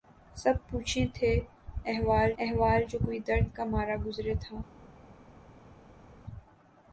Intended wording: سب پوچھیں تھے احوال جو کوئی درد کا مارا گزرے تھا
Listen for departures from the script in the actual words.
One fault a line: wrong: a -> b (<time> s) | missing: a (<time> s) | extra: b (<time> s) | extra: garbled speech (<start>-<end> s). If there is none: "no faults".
extra: احوال (2.4 s)